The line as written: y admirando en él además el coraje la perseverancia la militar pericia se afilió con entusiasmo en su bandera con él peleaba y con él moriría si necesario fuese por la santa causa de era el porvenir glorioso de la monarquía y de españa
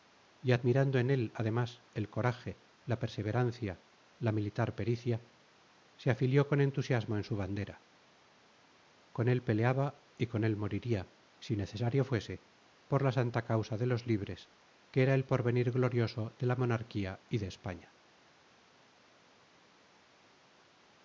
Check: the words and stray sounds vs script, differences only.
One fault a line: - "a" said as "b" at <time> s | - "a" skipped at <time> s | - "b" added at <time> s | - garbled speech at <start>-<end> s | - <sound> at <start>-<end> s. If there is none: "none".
- "los libres que" added at 13.9 s